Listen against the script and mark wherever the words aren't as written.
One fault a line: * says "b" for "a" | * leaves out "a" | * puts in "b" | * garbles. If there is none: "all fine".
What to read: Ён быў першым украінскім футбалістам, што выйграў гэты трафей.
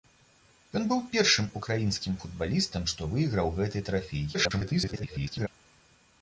* garbles